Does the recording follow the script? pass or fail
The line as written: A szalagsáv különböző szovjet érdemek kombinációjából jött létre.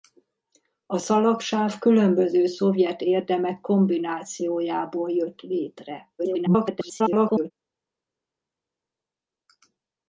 fail